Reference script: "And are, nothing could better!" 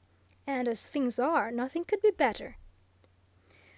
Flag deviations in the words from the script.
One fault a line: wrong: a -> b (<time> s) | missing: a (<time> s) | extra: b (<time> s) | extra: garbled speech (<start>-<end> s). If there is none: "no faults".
extra: as things (0.7 s)
extra: be (2.0 s)